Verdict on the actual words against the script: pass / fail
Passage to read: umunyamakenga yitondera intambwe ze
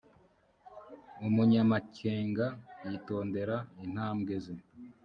pass